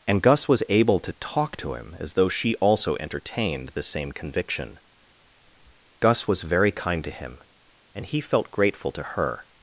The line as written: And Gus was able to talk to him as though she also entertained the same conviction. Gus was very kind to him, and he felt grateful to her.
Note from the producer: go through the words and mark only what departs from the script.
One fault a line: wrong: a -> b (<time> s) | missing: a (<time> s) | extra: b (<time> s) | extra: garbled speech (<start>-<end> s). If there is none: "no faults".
no faults